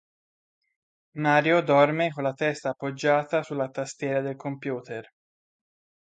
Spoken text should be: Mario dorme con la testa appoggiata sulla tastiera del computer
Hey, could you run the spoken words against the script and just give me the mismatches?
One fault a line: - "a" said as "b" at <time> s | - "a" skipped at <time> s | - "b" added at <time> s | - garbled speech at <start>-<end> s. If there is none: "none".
none